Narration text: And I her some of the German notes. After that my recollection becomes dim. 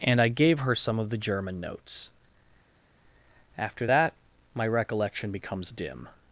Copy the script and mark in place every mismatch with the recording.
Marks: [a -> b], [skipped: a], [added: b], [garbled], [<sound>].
And I [added: gave] her some of the German notes. After that my recollection becomes dim.